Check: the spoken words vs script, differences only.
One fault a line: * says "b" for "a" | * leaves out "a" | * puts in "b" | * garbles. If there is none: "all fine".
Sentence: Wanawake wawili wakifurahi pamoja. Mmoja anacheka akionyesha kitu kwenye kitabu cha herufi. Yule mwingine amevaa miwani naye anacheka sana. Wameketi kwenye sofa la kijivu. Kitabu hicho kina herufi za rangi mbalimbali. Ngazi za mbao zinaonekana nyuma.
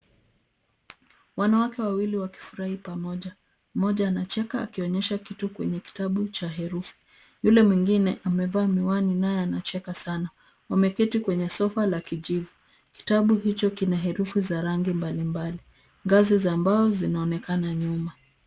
all fine